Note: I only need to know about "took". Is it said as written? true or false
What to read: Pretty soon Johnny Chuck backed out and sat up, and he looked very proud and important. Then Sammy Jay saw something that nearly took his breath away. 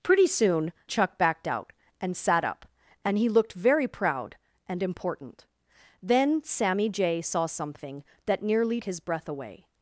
false